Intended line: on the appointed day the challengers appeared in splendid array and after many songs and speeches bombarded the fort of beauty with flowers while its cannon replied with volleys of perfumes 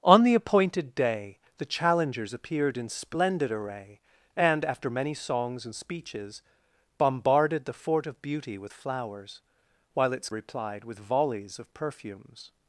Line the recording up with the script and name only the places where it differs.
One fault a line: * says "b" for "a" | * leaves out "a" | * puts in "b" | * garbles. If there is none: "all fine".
* leaves out "cannon"